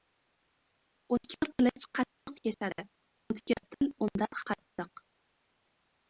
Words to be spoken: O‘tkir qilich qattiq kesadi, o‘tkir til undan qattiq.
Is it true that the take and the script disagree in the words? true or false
false